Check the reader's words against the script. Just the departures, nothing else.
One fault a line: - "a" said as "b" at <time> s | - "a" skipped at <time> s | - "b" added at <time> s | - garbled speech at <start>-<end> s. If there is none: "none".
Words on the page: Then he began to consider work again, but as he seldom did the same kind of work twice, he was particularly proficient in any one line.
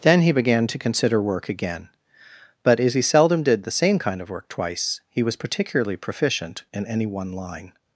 none